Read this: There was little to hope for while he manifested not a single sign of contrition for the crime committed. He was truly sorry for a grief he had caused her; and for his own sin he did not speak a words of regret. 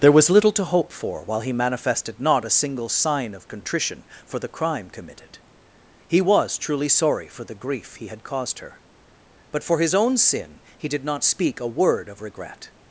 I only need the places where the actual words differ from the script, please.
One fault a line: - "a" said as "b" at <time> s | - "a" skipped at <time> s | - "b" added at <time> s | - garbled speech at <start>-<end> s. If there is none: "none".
- "a" said as "the" at 7.4 s
- "and" said as "but" at 9.5 s
- "words" said as "word" at 11.7 s